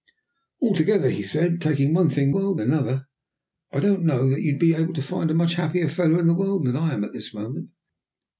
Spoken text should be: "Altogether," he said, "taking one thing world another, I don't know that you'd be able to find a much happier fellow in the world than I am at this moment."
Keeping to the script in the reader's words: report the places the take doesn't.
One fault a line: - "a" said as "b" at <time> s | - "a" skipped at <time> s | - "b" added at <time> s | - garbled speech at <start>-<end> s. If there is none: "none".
none